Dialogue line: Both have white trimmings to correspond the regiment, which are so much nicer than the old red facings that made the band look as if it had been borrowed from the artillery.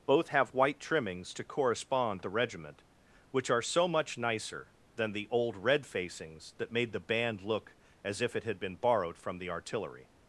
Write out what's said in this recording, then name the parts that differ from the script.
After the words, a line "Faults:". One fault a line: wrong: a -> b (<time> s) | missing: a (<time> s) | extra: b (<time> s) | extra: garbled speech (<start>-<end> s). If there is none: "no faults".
Both have white trimmings to correspond the regiment, which are so much nicer than the old red facings that made the band look as if it had been borrowed from the artillery.
Faults:
no faults